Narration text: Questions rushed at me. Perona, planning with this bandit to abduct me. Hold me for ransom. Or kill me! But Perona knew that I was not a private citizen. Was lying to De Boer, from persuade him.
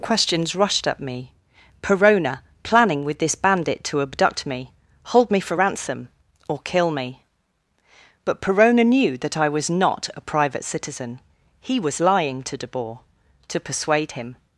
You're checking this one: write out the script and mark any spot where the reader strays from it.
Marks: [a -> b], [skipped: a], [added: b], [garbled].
Questions rushed at me. Perona, planning with this bandit to abduct me. Hold me for ransom. Or kill me! But Perona knew that I was not a private citizen. [added: He] Was lying to De Boer, [from -> to] persuade him.